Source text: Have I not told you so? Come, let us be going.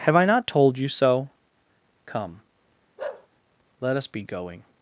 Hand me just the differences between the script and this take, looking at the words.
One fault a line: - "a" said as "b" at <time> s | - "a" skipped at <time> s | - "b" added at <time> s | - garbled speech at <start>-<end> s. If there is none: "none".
none